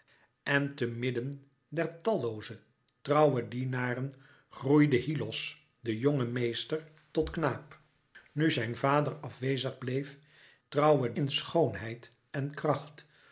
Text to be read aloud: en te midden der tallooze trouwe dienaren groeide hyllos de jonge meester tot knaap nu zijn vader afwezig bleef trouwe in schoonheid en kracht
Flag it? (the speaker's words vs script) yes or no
no